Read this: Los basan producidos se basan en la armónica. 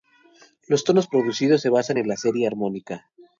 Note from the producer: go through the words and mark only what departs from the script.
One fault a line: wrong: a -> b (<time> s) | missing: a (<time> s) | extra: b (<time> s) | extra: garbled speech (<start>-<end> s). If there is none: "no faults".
wrong: basan -> tonos (0.8 s)
extra: serie (2.1 s)